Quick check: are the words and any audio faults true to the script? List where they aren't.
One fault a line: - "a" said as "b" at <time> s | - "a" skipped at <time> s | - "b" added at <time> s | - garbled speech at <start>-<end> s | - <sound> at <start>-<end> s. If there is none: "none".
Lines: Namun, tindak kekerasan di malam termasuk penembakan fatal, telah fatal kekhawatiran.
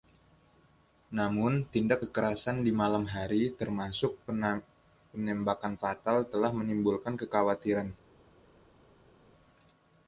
- "hari" added at 3.0 s
- "fatal" said as "menimbulkan" at 6.5 s